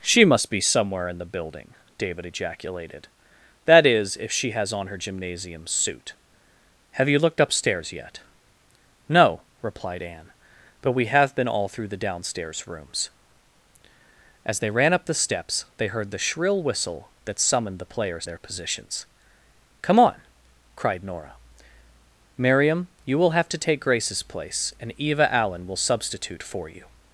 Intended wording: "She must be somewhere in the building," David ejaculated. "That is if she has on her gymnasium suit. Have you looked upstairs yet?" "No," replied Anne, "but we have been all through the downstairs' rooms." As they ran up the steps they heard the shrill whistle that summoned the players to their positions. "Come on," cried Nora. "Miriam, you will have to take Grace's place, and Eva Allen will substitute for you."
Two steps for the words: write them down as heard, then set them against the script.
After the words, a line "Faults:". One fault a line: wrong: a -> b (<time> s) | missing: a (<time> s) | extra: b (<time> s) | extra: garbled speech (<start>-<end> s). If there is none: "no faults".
"She must be somewhere in the building," David ejaculated. "That is if she has on her gymnasium suit. Have you looked upstairs yet?" "No," replied Anne, "but we have been all through the downstairs' rooms." As they ran up the steps they heard the shrill whistle that summoned the players their positions. "Come on," cried Nora. "Miriam, you will have to take Grace's place, and Eva Allen will substitute for you."
Faults:
missing: to (18.2 s)